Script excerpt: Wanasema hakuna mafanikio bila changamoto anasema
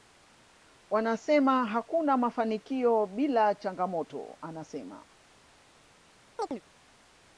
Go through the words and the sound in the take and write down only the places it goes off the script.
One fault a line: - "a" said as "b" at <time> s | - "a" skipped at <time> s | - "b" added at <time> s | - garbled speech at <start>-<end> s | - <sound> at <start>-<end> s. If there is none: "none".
- chirp at 6.4-6.6 s